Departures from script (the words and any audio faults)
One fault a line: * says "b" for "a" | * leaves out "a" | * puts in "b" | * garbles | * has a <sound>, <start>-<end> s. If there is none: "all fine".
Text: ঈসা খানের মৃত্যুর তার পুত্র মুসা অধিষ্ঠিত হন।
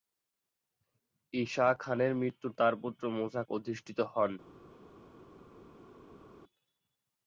all fine